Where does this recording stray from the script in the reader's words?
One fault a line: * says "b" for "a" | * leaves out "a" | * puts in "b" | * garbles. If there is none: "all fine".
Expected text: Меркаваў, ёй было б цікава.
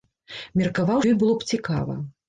all fine